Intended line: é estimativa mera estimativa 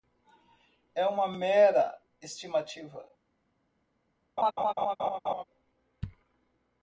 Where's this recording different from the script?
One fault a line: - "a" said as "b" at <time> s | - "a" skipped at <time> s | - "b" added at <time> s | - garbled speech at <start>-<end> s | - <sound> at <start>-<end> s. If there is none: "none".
- "estimativa" said as "uma" at 1.1 s
- laugh at 4.4-5.4 s